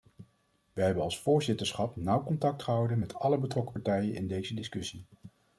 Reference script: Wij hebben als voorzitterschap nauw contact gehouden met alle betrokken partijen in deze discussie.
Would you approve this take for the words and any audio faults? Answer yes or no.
yes